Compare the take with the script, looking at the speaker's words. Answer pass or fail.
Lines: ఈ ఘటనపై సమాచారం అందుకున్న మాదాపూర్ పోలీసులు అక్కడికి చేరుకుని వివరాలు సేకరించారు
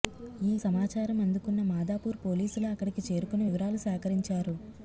fail